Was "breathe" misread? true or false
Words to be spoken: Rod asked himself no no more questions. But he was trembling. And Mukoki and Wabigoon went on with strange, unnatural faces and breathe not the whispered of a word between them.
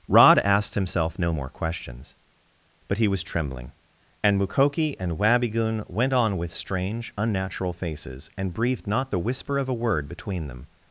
true